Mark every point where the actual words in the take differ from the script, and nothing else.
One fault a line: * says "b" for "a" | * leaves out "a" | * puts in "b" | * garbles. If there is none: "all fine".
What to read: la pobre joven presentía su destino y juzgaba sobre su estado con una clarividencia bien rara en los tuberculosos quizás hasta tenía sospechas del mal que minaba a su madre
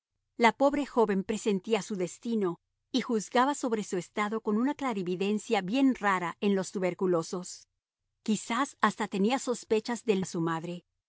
* leaves out "mal que minaba"